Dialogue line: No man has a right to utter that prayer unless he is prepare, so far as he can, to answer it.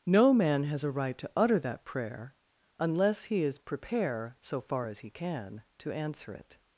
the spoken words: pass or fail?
pass